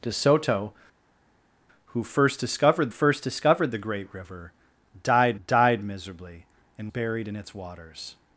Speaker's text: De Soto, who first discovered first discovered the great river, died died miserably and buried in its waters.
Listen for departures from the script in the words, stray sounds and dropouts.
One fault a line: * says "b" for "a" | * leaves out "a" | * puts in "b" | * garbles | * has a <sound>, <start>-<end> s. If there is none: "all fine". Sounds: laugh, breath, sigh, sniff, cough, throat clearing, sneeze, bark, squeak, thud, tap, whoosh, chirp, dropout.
all fine